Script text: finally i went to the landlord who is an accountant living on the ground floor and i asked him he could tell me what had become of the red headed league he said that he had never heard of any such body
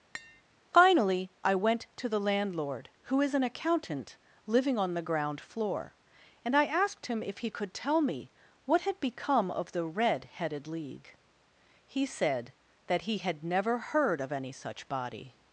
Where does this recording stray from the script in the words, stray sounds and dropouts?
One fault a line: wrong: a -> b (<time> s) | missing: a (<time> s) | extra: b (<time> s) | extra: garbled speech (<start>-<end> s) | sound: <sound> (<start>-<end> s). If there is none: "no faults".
sound: tap (0.1-0.4 s)
extra: if (7.2 s)